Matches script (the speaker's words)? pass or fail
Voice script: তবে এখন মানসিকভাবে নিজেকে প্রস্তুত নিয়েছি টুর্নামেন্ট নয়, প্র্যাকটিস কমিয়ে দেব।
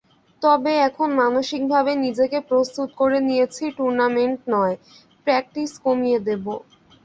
fail